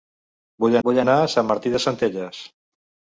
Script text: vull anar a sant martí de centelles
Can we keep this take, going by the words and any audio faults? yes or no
no